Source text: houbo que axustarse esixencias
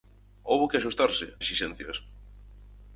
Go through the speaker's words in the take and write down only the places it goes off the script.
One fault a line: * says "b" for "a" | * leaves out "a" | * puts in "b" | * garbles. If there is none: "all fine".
all fine